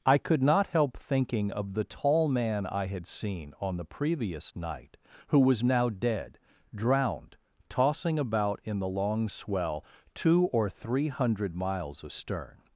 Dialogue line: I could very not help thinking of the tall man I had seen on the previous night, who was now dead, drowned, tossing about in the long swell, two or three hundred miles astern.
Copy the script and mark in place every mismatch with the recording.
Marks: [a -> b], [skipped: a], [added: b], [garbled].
I could [skipped: very] not help thinking of the tall man I had seen on the previous night, who was now dead, drowned, tossing about in the long swell, two or three hundred miles astern.